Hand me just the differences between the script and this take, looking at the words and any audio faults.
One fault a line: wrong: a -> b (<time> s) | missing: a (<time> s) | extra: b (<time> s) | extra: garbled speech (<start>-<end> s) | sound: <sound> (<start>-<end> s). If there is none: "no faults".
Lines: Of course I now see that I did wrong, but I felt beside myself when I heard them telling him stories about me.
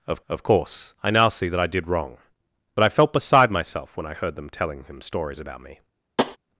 extra: of (0.3 s)
sound: tap (6.2-6.4 s)